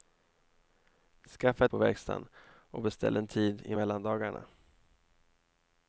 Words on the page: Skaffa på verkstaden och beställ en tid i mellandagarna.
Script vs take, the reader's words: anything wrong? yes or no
no